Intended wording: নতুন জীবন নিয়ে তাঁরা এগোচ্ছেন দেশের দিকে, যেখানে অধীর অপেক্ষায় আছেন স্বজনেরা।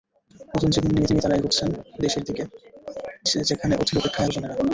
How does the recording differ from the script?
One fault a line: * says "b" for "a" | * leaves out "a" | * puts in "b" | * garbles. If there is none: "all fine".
* puts in "নিয়ে"
* leaves out "আছেন"